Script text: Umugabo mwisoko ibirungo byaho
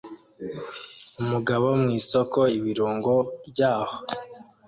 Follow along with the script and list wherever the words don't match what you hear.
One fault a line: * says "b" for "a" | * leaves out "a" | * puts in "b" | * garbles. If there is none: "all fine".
all fine